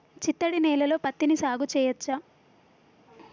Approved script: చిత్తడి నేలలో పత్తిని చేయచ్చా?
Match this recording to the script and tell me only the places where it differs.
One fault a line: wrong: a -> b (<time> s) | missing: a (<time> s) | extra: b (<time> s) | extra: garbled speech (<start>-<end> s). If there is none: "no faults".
extra: సాగు (1.3 s)